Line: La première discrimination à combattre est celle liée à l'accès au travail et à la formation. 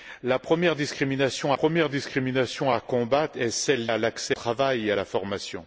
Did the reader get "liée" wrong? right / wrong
wrong